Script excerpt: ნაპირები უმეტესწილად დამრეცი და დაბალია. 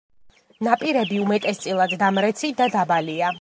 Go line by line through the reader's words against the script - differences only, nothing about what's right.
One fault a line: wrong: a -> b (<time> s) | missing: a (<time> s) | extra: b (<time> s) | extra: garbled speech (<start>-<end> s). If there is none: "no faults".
no faults